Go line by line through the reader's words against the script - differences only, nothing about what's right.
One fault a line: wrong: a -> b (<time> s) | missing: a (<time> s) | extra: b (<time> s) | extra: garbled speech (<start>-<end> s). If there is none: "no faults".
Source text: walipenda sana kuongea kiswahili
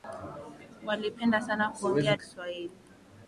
no faults